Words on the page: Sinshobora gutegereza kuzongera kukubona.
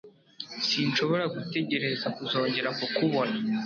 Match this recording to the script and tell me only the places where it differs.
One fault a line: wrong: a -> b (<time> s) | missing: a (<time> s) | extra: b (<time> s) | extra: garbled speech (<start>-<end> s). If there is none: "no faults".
no faults